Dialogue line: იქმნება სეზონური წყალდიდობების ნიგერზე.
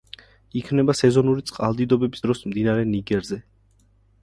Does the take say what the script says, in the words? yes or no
no